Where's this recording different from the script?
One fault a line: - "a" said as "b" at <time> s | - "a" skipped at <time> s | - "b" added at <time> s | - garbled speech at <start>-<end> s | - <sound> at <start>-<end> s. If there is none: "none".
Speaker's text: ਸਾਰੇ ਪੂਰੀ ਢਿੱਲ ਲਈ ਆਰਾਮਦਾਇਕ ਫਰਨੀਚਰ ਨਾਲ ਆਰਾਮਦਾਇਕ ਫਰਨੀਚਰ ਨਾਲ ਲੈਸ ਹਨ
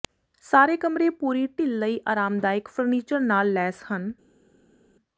- "ਕਮਰੇ" added at 0.8 s
- "ਆਰਾਮਦਾਇਕ ਫਰਨੀਚਰ ਨਾਲ" skipped at 3.5 s